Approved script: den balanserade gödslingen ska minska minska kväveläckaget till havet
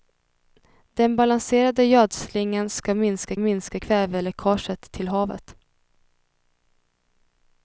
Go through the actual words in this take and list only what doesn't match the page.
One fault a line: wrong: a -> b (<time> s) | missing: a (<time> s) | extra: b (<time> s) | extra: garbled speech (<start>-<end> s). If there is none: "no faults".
no faults